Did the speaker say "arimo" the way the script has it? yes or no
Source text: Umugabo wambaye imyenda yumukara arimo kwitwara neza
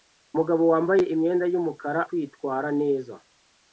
no